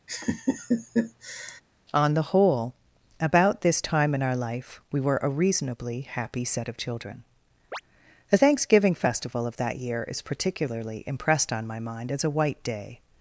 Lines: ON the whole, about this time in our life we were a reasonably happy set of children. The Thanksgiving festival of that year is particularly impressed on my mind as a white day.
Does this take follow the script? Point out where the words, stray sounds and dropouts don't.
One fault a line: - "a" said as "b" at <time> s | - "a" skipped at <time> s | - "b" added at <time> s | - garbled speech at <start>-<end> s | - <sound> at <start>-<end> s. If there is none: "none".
- laugh at 0.1-1.6 s
- chirp at 7.7-7.8 s